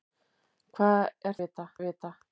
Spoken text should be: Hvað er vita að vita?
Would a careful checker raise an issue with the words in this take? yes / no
no